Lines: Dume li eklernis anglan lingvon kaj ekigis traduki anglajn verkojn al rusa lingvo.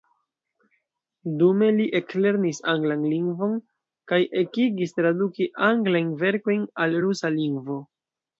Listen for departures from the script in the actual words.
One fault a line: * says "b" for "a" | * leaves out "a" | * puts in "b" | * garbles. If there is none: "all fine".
all fine